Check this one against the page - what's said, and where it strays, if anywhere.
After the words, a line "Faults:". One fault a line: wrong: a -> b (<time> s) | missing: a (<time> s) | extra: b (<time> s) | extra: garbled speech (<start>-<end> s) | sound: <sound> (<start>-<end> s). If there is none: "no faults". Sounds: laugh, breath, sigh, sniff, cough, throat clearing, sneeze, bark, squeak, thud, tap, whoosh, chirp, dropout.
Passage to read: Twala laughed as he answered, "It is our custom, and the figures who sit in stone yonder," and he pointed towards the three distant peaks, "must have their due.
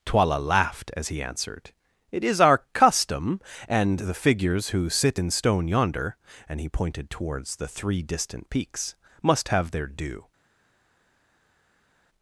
Twala laughed as he answered, "It is our custom, and the figures who sit in stone yonder," and he pointed towards the three distant peaks, "must have their due.
Faults:
no faults